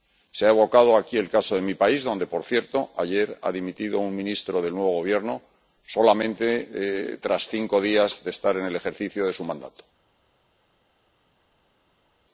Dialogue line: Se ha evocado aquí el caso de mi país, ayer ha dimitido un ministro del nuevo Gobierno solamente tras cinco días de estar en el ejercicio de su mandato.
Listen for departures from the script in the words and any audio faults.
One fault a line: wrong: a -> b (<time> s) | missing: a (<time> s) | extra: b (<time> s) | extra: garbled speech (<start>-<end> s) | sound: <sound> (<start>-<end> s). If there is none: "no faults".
extra: donde por cierto (2.0 s)